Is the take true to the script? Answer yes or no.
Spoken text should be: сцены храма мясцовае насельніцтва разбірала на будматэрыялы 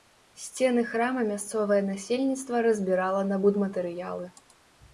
yes